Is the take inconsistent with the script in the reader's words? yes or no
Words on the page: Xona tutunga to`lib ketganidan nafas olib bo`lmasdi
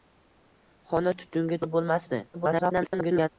yes